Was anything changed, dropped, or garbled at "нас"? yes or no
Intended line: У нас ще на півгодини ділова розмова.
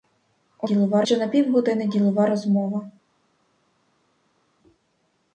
yes